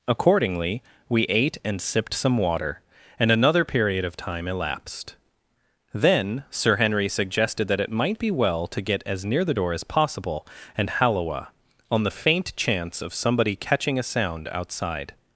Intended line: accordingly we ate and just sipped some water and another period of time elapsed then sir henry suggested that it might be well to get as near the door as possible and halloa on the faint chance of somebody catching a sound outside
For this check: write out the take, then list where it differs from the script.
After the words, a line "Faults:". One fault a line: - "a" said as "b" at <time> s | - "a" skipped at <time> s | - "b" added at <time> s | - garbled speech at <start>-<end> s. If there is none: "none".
accordingly we ate and sipped some water and another period of time elapsed then sir henry suggested that it might be well to get as near the door as possible and halloa on the faint chance of somebody catching a sound outside
Faults:
- "just" skipped at 1.8 s